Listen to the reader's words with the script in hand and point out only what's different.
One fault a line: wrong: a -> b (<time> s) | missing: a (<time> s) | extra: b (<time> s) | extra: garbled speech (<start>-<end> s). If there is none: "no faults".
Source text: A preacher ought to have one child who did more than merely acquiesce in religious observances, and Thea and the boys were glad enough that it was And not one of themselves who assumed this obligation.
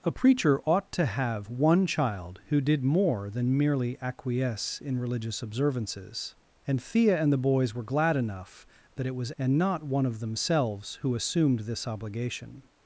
no faults